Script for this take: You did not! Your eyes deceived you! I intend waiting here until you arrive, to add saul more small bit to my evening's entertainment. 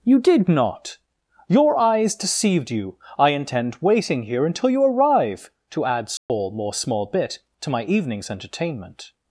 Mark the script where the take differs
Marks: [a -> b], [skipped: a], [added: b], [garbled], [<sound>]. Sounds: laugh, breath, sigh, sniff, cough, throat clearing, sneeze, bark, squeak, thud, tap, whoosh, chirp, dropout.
You did not! Your eyes deceived you! I intend waiting here until you arrive, to add saul [dropout] more small bit to my evening's entertainment.